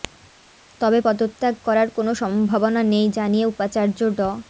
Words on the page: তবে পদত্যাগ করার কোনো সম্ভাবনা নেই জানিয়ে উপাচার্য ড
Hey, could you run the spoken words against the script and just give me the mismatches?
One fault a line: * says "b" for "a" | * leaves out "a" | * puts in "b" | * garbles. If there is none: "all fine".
all fine